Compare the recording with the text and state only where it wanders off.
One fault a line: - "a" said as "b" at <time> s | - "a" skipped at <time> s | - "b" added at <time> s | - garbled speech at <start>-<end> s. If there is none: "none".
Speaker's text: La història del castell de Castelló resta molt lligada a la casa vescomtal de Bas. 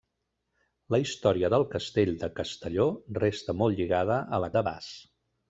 - "casa vescomtal" skipped at 4.5 s